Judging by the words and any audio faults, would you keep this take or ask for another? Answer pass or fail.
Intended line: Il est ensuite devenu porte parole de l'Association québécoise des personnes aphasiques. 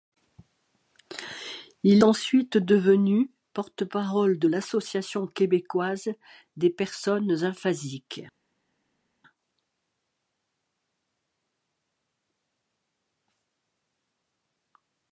fail